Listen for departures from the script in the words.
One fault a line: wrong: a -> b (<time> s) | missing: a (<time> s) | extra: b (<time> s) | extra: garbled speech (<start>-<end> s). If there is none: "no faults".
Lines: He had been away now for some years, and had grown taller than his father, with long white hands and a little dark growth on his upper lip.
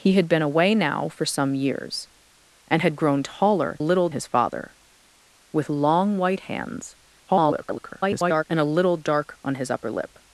wrong: than -> little (3.8 s)
extra: garbled speech (7.3-8.4 s)
missing: growth (9.4 s)